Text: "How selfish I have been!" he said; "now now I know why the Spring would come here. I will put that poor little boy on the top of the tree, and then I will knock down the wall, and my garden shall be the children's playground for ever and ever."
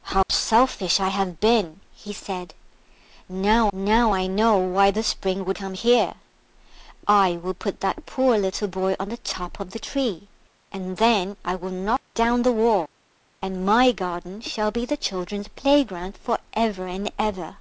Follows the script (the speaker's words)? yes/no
yes